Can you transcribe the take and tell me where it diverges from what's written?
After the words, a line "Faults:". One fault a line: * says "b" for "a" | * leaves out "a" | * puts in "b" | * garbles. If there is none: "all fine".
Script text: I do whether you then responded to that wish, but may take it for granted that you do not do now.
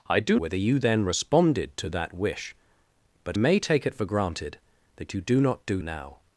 I do whether you then responded to that wish, but may take it for granted that you do not do now.
Faults:
all fine